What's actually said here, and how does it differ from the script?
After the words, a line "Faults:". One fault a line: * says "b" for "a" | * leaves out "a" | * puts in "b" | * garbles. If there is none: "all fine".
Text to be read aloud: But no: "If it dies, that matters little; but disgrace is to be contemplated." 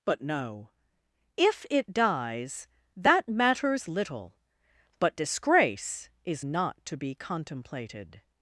But no: "If it dies, that matters little; but disgrace is not to be contemplated."
Faults:
* puts in "not"